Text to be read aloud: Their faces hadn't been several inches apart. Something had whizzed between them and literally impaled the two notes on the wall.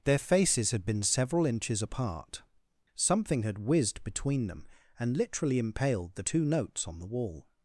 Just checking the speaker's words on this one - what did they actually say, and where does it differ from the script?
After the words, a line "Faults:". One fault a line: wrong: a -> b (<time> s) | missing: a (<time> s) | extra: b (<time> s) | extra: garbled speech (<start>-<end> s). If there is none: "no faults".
Their faces had been several inches apart. Something had whizzed between them and literally impaled the two notes on the wall.
Faults:
wrong: hadn't -> had (0.7 s)